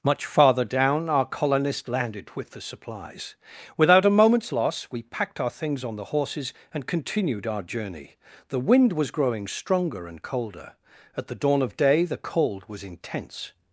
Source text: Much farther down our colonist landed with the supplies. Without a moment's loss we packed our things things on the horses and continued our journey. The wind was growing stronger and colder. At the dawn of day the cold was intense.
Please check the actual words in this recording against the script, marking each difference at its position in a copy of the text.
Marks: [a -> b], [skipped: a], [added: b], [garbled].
Much farther down our colonist landed with the supplies. Without a moment's loss we packed our things [skipped: things] on the horses and continued our journey. The wind was growing stronger and colder. At the dawn of day the cold was intense.